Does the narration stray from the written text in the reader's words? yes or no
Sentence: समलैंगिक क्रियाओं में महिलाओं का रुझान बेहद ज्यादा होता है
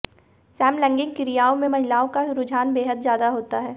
no